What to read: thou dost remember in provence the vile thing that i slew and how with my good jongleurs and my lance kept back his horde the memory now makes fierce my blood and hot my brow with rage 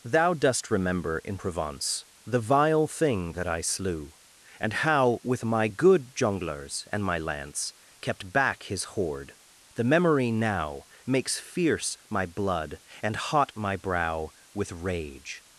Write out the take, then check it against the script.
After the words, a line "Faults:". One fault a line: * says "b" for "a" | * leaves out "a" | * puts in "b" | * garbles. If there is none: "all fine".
thou dost remember in provence the vile thing that i slew and how with my good jongleurs and my lance kept back his horde the memory now makes fierce my blood and hot my brow with rage
Faults:
all fine